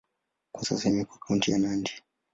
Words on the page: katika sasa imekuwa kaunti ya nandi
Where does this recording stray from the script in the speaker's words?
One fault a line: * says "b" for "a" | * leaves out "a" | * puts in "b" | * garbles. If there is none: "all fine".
* says "kwa" for "katika"